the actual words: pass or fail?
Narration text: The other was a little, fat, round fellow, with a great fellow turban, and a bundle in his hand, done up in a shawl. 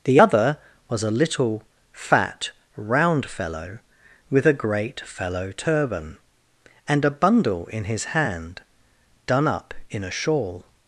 pass